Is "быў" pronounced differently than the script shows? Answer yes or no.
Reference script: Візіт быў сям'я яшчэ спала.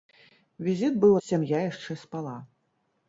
no